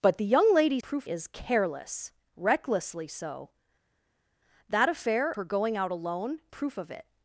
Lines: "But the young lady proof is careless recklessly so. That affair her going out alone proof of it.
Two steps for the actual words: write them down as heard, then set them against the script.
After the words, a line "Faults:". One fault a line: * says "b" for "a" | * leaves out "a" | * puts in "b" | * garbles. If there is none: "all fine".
"But the young lady proof is careless recklessly so. That affair her going out alone proof of it.
Faults:
all fine